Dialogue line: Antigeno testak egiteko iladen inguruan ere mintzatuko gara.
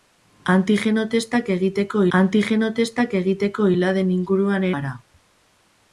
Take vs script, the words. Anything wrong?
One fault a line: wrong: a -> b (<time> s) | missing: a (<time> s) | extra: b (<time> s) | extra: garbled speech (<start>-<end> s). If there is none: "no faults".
extra: antigeno testak egiteko (2.2 s)
missing: ere mintzatuko (4.7 s)